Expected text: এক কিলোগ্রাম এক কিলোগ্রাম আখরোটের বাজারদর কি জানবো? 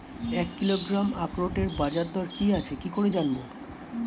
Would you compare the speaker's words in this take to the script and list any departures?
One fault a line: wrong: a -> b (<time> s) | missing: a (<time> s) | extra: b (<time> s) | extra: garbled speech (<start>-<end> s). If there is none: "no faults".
missing: এক কিলোগ্রাম (1.1 s)
extra: আছে কি করে (2.5 s)